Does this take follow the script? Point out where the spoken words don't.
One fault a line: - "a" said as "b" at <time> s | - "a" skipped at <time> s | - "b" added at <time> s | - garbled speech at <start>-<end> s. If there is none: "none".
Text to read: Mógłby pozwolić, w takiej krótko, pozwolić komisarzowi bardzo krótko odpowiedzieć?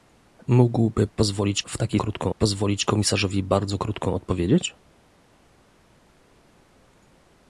none